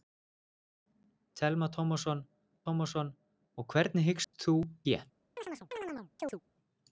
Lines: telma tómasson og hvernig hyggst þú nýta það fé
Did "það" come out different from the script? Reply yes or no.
yes